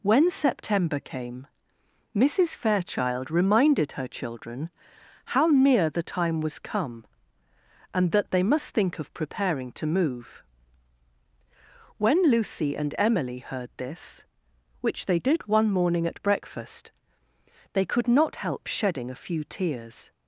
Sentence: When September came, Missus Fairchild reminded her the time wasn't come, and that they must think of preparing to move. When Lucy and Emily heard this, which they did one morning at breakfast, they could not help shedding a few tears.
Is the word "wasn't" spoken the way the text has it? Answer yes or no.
no